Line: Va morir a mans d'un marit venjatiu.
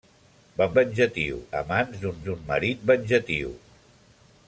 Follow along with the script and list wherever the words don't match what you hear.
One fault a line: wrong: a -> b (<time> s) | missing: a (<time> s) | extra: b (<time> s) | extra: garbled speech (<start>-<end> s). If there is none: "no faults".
wrong: morir -> venjatiu (0.8 s)
extra: d'un (2.3 s)